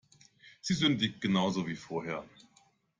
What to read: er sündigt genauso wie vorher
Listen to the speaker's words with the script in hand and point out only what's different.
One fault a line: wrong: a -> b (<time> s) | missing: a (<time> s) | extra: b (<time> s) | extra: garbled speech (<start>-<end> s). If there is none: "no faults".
wrong: er -> sie (0.6 s)